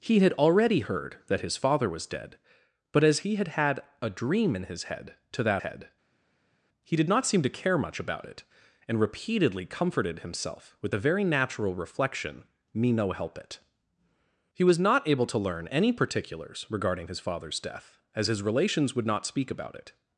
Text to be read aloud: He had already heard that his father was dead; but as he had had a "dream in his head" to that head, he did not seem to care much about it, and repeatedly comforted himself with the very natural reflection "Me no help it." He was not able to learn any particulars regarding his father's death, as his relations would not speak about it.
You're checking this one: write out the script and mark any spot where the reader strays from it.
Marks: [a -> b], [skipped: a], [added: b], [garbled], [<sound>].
He had already heard that his father was dead; but as he had had a "dream in his head" to that head, he did not seem to care much about it, and repeatedly comforted himself with the very natural reflection "Me no help it." He was not able to learn any particulars regarding his father's death, as his relations would not speak about it.